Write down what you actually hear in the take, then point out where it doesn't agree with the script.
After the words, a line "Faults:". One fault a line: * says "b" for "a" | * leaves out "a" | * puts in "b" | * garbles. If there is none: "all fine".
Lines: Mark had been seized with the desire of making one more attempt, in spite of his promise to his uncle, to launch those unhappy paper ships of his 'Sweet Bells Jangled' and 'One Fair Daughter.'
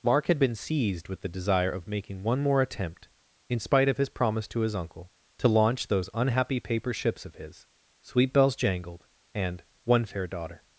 Mark had been seized with the desire of making one more attempt, in spite of his promise to his uncle, to launch those unhappy paper ships of his 'Sweet Bells Jangled' and 'One Fair Daughter.'
Faults:
all fine